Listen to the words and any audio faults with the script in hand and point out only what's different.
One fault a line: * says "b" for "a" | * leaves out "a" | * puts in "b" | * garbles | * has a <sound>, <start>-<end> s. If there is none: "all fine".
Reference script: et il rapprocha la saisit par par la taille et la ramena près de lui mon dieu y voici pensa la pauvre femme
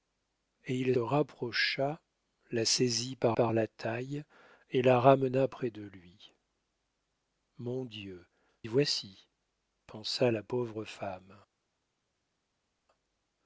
all fine